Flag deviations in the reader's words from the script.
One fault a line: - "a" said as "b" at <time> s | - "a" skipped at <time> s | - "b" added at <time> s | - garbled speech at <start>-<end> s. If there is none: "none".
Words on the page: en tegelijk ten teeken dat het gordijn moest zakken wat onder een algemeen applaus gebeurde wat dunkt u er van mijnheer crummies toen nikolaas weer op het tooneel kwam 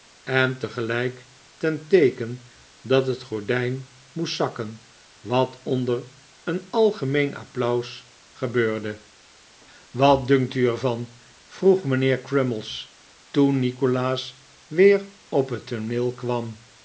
- "vroeg" added at 11.5 s